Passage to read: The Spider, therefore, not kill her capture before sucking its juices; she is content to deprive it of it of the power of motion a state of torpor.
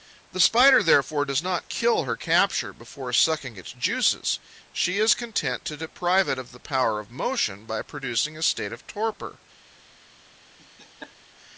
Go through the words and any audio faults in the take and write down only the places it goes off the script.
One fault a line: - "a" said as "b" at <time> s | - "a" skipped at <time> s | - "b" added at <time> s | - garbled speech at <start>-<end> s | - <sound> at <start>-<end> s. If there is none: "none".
- "does" added at 1.2 s
- "it of" skipped at 6.5 s
- "by producing" added at 7.7 s
- laugh at 10.6-11.2 s